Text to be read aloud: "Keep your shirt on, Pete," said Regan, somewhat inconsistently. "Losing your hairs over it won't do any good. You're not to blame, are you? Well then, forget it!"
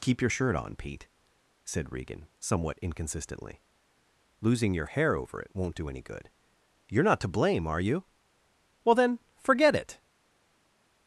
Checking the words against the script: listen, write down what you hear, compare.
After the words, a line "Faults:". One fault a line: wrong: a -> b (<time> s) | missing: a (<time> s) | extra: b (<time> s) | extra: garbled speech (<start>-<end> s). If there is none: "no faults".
"Keep your shirt on, Pete," said Regan, somewhat inconsistently. "Losing your hair over it won't do any good. You're not to blame, are you? Well then, forget it!"
Faults:
wrong: hairs -> hair (4.9 s)